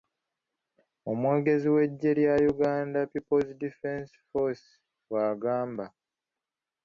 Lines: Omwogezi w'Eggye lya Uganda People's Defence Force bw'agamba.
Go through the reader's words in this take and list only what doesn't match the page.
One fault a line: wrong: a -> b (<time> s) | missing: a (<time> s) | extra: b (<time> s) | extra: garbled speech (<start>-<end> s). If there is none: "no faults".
no faults